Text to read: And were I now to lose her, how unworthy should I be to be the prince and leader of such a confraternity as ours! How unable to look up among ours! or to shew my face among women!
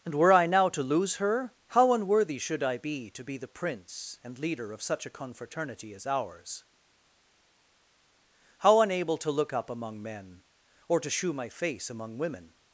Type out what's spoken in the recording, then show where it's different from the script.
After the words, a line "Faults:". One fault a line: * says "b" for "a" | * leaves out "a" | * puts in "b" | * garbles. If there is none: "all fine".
And were I now to lose her, how unworthy should I be to be the prince and leader of such a confraternity as ours! How unable to look up among men! or to shew my face among women!
Faults:
* says "men" for "ours"